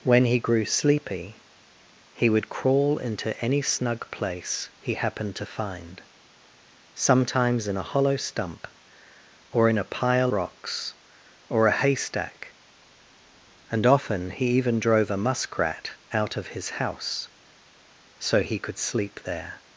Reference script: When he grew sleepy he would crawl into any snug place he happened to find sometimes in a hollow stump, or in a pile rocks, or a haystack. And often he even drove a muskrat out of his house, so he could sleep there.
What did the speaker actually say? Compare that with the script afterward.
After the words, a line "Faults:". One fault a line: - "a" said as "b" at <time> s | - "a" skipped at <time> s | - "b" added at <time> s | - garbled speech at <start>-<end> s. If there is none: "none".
When he grew sleepy he would crawl into any snug place he happened to find sometimes in a hollow stump, or in a pile rocks, or a haystack. And often he even drove a muskrat out of his house, so he could sleep there.
Faults:
none